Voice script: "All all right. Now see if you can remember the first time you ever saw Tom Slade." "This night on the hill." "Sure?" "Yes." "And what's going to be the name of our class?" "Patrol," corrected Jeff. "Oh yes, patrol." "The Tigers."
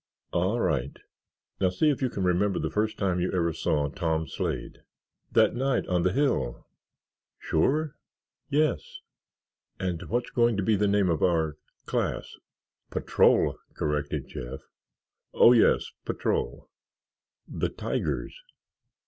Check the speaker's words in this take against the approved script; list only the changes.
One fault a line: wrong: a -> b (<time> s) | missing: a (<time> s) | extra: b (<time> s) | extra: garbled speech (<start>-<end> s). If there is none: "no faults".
missing: all (0.6 s)
wrong: This -> That (5.3 s)